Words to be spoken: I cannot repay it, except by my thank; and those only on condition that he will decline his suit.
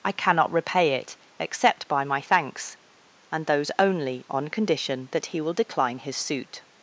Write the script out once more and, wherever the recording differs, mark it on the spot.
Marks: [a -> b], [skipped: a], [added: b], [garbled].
I cannot repay it, except by my [thank; -> thanks] and those only on condition that he will decline his suit.